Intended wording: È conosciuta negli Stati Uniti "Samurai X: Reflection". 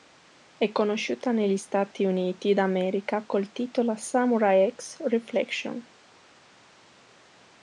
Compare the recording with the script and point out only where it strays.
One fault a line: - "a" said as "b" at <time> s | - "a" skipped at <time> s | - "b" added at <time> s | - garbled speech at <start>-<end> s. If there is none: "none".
- "d'America col titolo" added at 2.5 s